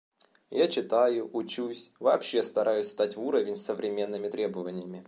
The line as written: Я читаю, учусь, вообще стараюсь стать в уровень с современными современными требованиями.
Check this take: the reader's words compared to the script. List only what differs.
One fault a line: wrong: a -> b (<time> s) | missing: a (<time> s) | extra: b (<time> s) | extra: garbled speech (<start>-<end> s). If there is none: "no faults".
missing: современными (4.3 s)